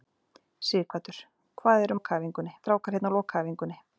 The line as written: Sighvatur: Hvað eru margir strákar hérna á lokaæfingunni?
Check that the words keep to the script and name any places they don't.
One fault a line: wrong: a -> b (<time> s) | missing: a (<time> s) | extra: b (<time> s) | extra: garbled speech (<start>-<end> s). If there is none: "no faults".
wrong: margir -> lokaæfingunni (1.9 s)